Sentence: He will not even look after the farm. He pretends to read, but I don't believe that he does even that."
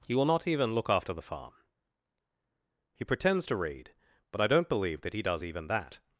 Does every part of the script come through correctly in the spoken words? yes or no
yes